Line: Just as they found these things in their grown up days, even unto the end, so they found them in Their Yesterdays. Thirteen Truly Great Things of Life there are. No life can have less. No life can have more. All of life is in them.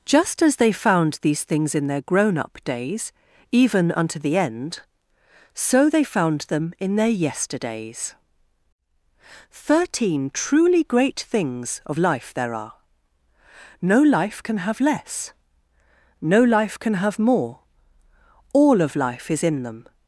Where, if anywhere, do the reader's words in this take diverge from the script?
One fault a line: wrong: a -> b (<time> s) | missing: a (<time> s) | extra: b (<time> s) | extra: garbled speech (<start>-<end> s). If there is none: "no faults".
no faults